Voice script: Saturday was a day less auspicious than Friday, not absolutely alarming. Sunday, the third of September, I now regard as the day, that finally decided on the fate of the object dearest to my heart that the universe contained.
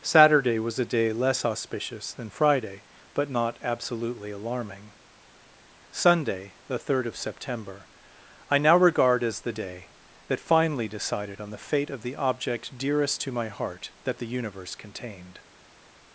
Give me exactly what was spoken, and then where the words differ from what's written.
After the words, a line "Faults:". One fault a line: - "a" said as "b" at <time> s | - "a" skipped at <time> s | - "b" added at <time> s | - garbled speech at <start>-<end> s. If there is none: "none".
Saturday was a day less auspicious than Friday, but not absolutely alarming. Sunday, the third of September, I now regard as the day, that finally decided on the fate of the object dearest to my heart that the universe contained.
Faults:
- "but" added at 3.1 s